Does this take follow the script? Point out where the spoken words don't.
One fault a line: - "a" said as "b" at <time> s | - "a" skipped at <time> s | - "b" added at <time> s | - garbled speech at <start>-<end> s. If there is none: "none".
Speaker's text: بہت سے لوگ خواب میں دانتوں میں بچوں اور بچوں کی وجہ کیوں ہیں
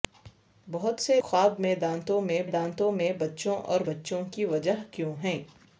- "لوگ خواب" said as "خواب میں دانتوں" at 1.2 s